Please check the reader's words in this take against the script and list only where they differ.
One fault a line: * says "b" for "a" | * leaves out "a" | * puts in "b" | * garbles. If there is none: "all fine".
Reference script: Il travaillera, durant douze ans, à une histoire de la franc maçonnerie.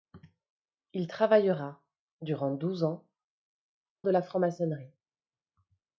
* leaves out "à une histoire"